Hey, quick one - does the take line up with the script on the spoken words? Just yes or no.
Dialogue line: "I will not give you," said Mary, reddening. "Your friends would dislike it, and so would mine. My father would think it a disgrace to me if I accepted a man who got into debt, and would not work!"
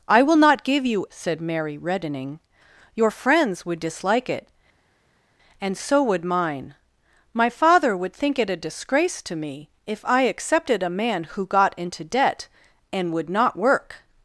yes